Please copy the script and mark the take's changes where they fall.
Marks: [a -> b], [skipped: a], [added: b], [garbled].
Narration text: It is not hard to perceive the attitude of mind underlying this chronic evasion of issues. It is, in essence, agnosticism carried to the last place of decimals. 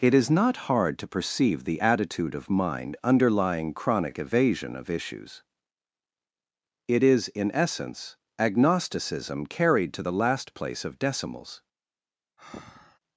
It is not hard to perceive the attitude of mind underlying [skipped: this] chronic evasion of issues. It is, in essence, agnosticism carried to the last place of decimals.